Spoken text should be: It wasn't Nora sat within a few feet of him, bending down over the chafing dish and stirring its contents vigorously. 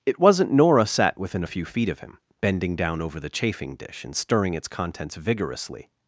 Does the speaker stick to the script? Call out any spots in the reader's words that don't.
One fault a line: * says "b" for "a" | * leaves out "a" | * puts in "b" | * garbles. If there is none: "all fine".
all fine